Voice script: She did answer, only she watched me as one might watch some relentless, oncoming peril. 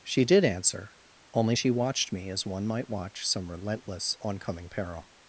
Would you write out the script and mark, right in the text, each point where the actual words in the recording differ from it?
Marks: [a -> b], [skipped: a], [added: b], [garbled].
She did answer, only she watched me as one might watch some relentless, oncoming peril.